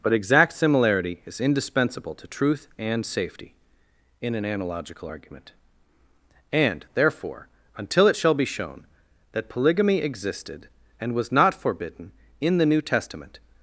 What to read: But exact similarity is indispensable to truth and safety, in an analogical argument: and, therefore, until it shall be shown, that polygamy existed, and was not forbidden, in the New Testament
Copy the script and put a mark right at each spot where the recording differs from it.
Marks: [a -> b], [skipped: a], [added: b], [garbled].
But exact similarity is indispensable to truth and safety, in an analogical argument: and, therefore, until it shall be shown, that polygamy existed, and was not forbidden, in the New Testament